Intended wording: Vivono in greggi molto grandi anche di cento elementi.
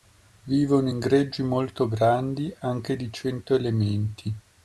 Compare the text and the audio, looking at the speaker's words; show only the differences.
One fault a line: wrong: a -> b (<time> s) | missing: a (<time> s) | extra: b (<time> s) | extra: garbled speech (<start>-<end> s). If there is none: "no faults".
no faults